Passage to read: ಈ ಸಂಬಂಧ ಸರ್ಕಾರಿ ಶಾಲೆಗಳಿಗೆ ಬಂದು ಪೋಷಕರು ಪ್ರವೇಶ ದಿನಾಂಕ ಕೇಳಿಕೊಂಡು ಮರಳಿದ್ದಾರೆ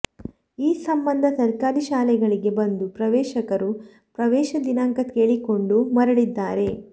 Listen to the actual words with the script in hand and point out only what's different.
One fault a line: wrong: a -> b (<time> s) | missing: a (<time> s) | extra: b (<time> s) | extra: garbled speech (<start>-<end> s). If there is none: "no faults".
no faults